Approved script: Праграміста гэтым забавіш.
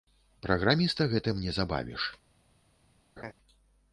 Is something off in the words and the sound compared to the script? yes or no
yes